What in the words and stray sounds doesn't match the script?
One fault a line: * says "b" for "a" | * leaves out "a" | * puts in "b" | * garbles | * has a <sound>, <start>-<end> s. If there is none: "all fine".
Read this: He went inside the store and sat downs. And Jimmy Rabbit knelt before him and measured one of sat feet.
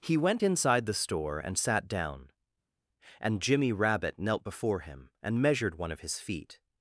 * says "down" for "downs"
* says "his" for "sat"